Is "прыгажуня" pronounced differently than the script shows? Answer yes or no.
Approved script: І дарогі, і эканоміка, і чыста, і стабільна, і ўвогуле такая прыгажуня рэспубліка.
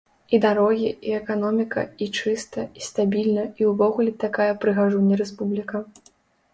no